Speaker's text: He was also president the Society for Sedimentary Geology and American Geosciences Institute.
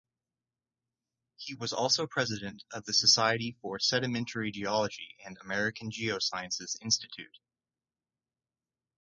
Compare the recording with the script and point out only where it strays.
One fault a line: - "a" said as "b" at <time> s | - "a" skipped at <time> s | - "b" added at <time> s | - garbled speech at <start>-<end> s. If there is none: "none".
- "of" added at 2.7 s